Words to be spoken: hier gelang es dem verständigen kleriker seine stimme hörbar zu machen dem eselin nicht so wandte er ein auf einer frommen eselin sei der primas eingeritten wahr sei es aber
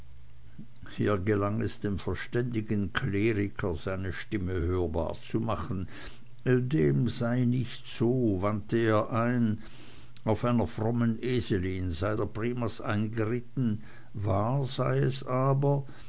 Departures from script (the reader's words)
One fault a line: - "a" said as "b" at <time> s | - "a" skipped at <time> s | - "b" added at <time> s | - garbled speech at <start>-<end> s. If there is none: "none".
- "eselin" said as "sei" at 7.1 s